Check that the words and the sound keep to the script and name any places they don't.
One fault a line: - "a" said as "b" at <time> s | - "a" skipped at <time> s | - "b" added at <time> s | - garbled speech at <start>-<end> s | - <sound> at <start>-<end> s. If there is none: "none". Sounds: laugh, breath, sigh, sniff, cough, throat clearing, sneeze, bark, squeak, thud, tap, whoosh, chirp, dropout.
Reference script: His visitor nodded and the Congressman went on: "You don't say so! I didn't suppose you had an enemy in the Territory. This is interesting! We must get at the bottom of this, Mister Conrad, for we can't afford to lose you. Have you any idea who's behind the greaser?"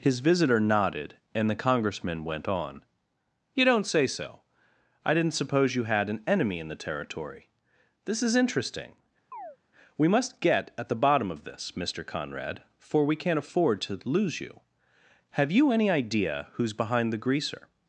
- chirp at 9.3-9.6 s